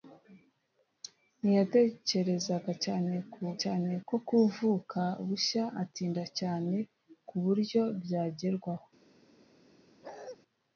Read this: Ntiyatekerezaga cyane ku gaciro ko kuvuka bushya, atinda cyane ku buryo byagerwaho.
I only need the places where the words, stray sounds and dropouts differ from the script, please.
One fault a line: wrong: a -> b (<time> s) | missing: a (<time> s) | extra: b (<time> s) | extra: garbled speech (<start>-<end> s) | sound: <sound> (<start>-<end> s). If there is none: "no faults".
wrong: gaciro -> cyane (3.6 s)
sound: bark (10.0-10.4 s)